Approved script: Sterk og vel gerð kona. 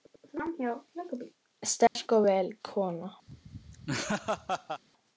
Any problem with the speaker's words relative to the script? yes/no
yes